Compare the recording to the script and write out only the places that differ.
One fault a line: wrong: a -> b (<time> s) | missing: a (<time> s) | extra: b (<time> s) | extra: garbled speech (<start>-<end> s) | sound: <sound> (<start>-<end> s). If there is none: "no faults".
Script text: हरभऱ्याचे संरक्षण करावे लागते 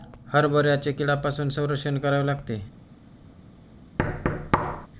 extra: कीड्यांपासून (0.9 s)
sound: thud (4.0-4.9 s)